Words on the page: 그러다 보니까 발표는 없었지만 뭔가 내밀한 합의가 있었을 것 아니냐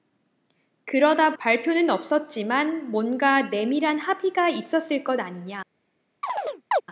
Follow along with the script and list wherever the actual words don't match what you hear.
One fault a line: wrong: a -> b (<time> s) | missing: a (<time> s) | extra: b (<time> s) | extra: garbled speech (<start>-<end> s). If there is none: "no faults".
missing: 보니까 (1.4 s)